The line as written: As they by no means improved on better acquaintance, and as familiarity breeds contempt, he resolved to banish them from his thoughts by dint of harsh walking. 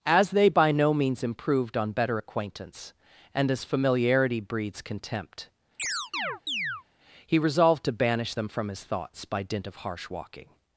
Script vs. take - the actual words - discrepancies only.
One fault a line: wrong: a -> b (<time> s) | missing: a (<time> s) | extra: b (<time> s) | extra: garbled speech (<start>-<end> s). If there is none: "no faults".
no faults